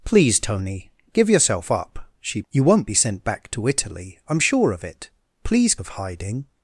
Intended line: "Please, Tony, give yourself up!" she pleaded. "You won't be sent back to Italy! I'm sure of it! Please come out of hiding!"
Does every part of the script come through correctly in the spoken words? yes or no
no